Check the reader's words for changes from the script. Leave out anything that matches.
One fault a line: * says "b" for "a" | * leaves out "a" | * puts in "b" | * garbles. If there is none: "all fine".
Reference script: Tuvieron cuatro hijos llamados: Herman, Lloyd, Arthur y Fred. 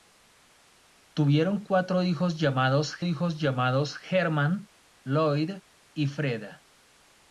* puts in "hijos llamados"
* leaves out "Arthur"